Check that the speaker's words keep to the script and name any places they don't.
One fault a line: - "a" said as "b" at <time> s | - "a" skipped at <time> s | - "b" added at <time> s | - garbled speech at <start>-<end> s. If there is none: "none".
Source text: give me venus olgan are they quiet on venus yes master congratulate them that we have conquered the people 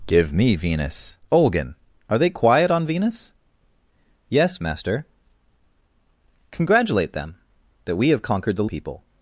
none